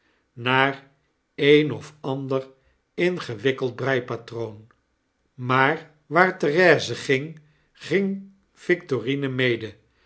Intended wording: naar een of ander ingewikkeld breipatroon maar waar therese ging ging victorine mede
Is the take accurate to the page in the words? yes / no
yes